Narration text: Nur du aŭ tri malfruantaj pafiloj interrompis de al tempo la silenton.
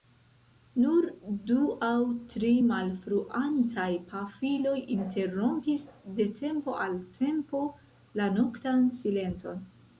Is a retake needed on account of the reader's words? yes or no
yes